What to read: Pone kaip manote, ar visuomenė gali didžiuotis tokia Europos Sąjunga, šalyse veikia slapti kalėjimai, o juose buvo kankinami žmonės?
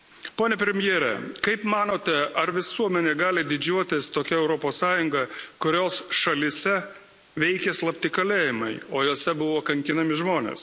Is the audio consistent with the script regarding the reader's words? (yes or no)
no